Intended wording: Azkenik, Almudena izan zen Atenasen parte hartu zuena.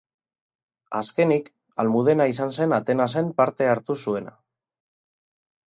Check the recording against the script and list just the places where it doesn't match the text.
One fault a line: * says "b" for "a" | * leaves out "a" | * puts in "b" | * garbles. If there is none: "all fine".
all fine